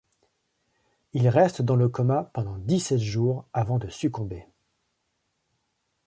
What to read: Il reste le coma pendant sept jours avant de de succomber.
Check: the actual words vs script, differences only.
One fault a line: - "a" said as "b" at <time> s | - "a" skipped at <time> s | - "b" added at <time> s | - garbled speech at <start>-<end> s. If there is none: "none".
- "dans" added at 1.6 s
- "dix" added at 2.6 s
- "de" skipped at 3.9 s